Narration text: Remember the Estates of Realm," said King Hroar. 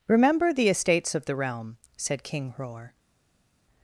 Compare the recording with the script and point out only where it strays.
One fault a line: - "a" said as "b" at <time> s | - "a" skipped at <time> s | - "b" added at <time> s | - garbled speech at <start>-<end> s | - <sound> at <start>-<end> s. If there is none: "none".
- "the" added at 1.2 s